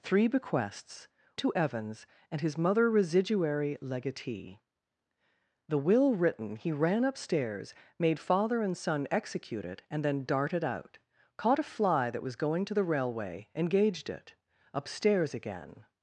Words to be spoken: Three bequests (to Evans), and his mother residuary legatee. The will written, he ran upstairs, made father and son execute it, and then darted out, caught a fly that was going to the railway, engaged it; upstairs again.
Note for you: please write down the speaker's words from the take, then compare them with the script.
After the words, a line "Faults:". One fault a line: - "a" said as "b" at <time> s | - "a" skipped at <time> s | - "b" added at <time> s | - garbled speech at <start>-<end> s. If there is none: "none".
Three bequests (to Evans), and his mother residuary legatee. The will written, he ran upstairs, made father and son execute it, and then darted out, caught a fly that was going to the railway, engaged it; upstairs again.
Faults:
none